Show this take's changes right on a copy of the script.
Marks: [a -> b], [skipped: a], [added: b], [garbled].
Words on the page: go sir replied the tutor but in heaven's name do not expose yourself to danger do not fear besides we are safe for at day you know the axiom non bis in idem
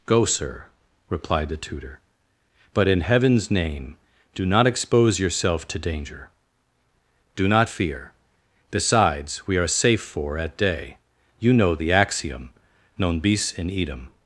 go sir replied the tutor but in heaven's name do not expose yourself to danger do not fear besides we are safe for at day you know the axiom non bis in idem